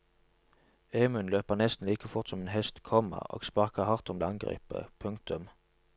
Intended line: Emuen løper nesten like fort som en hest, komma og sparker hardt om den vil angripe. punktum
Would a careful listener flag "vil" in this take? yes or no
yes